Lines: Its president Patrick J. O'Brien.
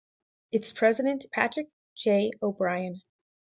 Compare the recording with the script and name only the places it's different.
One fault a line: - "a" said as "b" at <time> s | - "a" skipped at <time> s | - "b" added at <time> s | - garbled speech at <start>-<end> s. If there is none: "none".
none